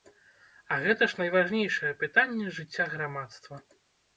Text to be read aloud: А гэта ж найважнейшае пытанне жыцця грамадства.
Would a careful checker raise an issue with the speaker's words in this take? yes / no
no